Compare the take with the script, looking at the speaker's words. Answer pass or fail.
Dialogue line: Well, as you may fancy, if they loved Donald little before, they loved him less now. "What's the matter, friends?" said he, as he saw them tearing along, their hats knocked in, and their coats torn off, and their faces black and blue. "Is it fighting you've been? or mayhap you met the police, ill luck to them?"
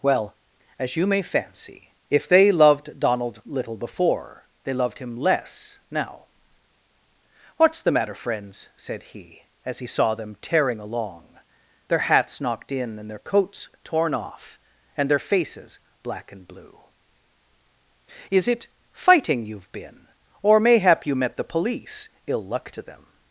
pass